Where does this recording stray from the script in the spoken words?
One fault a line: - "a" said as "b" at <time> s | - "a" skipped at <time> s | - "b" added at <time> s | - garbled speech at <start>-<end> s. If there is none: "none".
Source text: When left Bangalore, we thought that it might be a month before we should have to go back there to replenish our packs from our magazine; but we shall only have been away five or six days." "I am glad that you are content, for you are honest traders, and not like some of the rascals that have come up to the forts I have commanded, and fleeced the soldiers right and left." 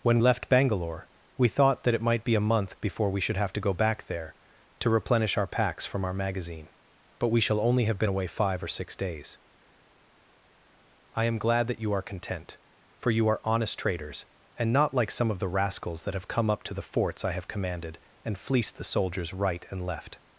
none